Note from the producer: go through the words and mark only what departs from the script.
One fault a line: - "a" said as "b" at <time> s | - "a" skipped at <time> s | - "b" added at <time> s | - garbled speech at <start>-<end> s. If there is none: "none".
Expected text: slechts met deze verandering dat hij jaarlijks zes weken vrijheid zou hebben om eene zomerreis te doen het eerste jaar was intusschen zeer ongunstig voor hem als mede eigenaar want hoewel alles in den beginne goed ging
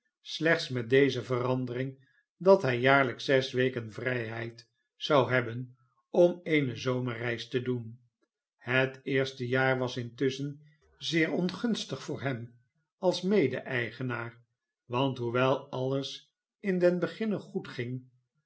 none